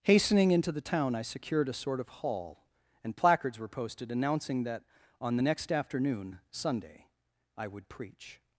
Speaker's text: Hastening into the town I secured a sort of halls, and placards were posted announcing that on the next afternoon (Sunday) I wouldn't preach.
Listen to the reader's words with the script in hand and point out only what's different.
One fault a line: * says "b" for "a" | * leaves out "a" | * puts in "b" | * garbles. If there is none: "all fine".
* says "hall" for "halls"
* says "would" for "wouldn't"